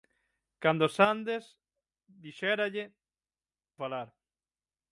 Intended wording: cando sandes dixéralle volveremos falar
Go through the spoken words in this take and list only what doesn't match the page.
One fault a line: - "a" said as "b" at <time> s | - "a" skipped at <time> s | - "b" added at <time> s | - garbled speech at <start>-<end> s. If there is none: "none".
- "volveremos" skipped at 2.9 s